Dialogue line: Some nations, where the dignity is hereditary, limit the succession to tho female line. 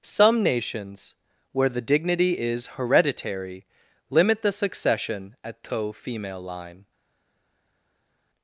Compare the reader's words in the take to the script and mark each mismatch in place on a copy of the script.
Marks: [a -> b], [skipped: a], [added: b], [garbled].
Some nations, where the dignity is hereditary, limit the succession [to -> at] tho female line.